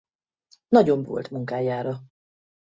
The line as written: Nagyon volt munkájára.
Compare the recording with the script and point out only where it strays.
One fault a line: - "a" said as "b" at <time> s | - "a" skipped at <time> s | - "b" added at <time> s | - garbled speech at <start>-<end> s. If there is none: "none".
none